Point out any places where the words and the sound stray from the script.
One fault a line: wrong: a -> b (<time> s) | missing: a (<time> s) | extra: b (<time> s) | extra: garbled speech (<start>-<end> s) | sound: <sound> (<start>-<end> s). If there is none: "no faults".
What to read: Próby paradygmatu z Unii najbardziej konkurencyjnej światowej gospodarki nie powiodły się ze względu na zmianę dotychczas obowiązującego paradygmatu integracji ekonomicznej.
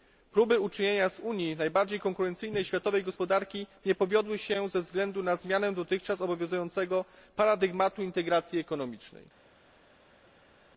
wrong: paradygmatu -> uczynienia (0.6 s)